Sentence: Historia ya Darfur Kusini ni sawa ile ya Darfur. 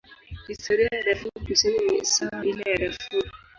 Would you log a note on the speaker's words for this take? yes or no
no